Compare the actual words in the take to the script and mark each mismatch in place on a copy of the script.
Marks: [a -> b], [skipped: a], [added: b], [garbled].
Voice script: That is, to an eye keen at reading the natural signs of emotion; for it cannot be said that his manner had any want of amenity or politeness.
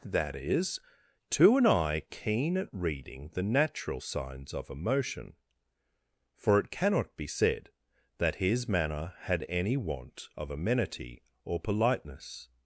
That is, to an eye keen at reading the natural signs of emotion; for it cannot be said that his manner had any want of amenity or politeness.